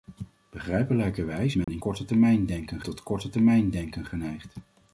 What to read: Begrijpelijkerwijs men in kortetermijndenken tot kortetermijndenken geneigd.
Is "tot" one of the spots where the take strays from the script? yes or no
no